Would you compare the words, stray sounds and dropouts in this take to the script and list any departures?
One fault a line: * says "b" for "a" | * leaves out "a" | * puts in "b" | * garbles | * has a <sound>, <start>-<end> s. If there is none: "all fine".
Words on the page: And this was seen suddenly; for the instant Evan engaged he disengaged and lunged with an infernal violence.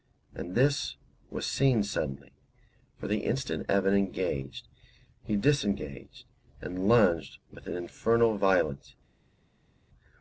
all fine